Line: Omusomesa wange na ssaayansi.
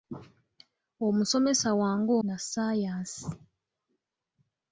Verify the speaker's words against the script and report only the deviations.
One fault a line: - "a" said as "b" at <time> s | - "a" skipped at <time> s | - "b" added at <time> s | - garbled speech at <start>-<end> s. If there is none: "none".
none